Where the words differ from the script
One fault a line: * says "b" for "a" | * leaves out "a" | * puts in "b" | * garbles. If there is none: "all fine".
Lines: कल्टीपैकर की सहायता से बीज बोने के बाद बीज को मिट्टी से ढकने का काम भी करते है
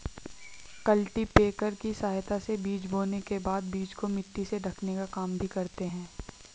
all fine